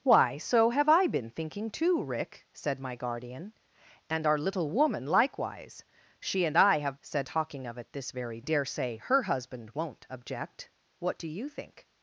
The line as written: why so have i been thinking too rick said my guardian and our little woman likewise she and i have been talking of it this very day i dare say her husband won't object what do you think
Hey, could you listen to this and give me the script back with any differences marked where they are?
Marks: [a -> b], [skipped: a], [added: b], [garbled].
why so have i been thinking too rick said my guardian and our little woman likewise she and i have [been -> said] talking of it this very [skipped: day i] dare say her husband won't object what do you think